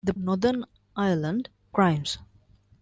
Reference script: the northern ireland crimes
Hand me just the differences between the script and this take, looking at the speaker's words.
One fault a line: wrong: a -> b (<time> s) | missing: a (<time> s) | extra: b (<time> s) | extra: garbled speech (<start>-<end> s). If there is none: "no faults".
no faults